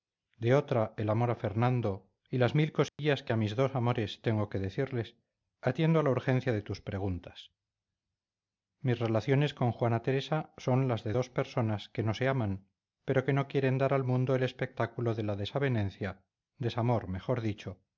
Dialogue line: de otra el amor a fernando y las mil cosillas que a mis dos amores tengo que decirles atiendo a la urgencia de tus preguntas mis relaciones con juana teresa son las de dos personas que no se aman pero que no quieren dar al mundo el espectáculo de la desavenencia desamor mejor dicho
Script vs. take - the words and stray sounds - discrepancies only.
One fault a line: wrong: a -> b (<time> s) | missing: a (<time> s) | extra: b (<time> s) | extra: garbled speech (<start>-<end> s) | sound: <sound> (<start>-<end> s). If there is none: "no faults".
sound: dropout (2.9-3.0 s)